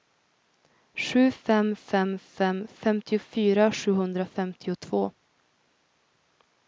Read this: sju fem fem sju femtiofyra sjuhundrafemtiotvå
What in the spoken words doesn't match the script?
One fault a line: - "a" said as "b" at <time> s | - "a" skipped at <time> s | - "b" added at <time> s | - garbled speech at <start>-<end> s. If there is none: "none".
- "sju" said as "fem" at 2.2 s